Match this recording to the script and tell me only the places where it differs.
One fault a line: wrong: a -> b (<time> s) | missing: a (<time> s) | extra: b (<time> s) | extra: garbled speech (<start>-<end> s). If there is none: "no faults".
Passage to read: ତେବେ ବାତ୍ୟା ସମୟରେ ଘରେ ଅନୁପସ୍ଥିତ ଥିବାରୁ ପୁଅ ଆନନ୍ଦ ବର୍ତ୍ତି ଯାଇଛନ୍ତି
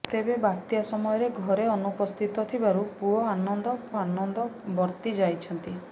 extra: ଆନନ୍ଦ (4.0 s)